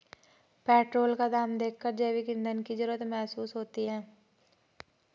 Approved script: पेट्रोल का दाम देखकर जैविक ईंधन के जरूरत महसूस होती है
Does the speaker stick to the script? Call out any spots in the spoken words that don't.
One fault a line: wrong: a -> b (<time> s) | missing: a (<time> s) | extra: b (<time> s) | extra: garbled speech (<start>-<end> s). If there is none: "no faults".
wrong: के -> की (2.6 s)